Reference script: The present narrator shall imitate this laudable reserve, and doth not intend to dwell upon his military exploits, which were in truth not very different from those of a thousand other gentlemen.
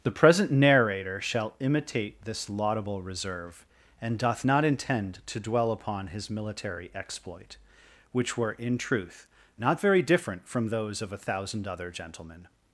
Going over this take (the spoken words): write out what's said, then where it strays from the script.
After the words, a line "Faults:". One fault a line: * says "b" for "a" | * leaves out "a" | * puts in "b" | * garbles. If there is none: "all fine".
The present narrator shall imitate this laudable reserve, and doth not intend to dwell upon his military exploit, which were in truth not very different from those of a thousand other gentlemen.
Faults:
* says "exploit" for "exploits"